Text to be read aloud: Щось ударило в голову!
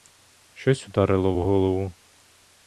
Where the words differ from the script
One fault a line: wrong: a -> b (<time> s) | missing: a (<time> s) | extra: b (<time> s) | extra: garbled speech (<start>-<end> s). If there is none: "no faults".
no faults